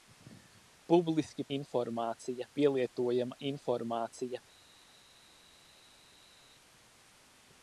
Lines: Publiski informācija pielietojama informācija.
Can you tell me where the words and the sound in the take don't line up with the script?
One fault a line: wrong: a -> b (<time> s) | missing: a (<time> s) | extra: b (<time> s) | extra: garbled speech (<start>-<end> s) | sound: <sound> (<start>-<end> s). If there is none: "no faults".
no faults